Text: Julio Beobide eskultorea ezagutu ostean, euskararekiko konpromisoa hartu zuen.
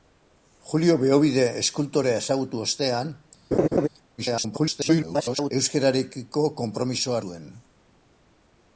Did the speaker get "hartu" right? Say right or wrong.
wrong